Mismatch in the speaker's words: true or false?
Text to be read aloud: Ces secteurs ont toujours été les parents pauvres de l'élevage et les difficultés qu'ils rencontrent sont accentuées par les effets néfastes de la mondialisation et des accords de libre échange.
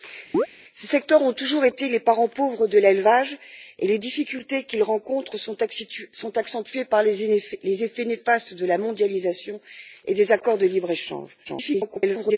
true